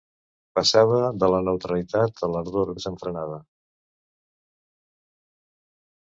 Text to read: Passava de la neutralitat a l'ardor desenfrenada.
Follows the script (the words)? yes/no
yes